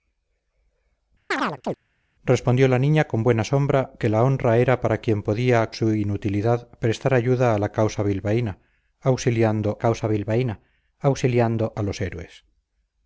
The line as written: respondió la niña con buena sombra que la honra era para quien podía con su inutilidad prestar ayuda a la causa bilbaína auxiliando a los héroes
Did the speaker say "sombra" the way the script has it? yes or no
yes